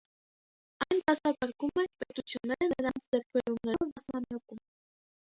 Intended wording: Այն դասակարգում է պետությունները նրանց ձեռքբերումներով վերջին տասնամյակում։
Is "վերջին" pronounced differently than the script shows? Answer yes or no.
yes